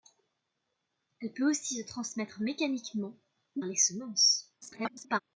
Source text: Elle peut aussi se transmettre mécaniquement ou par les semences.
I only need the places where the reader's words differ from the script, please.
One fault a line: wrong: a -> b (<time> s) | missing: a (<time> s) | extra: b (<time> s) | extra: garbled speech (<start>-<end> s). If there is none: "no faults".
missing: par (3.6 s)
extra: garbled speech (4.6-5.2 s)